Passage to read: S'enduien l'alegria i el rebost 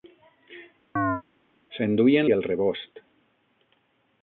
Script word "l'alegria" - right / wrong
wrong